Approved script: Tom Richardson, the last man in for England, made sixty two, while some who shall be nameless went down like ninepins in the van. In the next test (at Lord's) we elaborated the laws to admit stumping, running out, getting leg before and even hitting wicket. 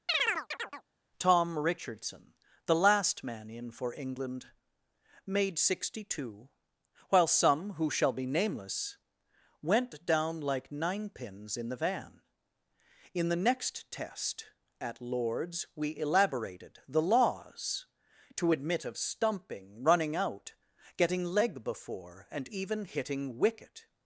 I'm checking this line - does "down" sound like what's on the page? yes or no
yes